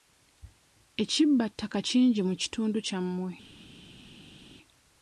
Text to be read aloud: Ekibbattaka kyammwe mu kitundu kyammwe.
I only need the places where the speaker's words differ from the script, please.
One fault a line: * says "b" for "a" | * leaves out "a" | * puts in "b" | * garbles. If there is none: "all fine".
* says "kingi" for "kyammwe"